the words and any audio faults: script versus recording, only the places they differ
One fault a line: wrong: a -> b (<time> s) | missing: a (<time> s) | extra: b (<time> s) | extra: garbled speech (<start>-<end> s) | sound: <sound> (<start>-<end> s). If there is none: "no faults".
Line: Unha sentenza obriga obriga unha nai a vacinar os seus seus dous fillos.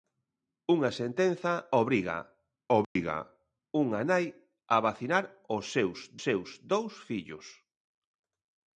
sound: dropout (2.8-3.0 s)